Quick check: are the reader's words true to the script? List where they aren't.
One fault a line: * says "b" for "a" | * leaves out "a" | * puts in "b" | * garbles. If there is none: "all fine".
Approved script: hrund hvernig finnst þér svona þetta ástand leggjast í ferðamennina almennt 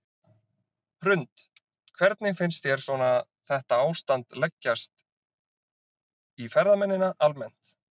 all fine